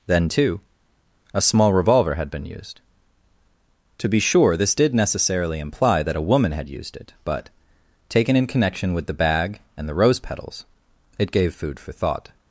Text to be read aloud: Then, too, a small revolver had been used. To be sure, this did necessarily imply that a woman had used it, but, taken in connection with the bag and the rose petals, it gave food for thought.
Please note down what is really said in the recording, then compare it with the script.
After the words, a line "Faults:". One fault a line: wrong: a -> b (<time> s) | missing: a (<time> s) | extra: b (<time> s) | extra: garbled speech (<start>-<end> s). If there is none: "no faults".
Then, too, a small revolver had been used. To be sure, this did necessarily imply that a woman had used it, but, taken in connection with the bag and the rose petals, it gave food for thought.
Faults:
no faults